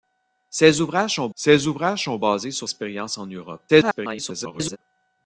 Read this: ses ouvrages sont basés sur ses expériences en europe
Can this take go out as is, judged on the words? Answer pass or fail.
fail